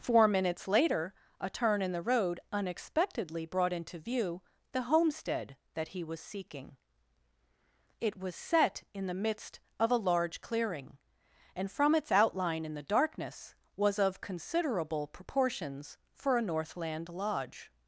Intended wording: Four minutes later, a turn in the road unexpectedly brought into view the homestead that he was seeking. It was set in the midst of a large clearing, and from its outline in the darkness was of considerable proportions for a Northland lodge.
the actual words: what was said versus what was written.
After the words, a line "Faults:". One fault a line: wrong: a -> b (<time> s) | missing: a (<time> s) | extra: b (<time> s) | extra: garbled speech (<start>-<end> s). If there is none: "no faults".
Four minutes later, a turn in the road unexpectedly brought into view the homestead that he was seeking. It was set in the midst of a large clearing, and from its outline in the darkness was of considerable proportions for a Northland lodge.
Faults:
no faults